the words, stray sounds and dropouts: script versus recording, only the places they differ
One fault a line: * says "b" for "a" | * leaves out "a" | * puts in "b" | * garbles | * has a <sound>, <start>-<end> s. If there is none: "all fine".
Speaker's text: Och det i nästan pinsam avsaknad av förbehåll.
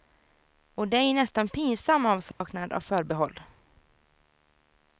* has a dropout, 2.3-2.4 s